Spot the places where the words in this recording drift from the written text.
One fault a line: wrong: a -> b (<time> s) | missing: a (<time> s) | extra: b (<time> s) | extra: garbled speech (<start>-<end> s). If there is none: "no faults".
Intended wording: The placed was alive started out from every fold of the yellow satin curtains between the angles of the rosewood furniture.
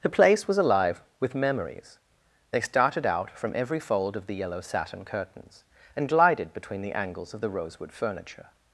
wrong: placed -> place (0.2 s)
extra: with memories they (1.2 s)
extra: and glided (5.9 s)